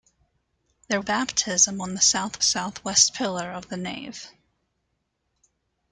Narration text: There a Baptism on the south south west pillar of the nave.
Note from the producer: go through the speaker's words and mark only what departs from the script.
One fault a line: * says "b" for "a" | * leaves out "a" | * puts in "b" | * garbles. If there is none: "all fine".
all fine